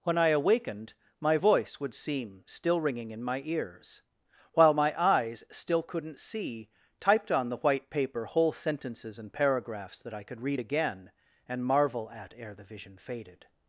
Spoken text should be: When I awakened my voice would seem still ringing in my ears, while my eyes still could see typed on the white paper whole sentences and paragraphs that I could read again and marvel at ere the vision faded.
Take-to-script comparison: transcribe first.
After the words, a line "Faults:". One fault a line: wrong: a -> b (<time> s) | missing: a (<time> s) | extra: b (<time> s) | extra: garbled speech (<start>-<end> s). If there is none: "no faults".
When I awakened my voice would seem still ringing in my ears, while my eyes still couldn't see typed on the white paper whole sentences and paragraphs that I could read again and marvel at ere the vision faded.
Faults:
wrong: could -> couldn't (5.8 s)